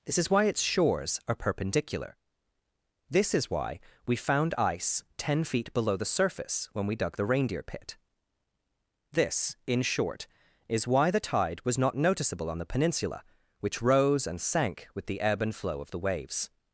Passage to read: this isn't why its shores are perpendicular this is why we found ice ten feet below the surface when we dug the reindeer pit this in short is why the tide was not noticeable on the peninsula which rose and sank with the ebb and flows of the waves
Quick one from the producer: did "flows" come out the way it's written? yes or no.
no